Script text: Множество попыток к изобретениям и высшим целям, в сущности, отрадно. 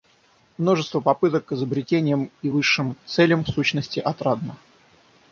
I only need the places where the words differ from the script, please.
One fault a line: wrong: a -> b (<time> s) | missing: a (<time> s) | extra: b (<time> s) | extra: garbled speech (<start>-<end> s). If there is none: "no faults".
no faults